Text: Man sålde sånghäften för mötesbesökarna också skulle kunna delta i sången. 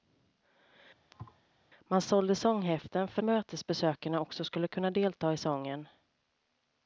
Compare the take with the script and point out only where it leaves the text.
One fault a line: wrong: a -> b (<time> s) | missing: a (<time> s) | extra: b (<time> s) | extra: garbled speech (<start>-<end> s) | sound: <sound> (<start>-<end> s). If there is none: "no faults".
sound: thud (1.1-1.4 s)